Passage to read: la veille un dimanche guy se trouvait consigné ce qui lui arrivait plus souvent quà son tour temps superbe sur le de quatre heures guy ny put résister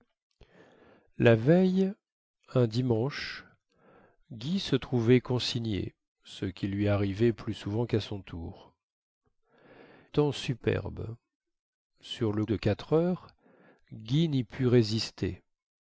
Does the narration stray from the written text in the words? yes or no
no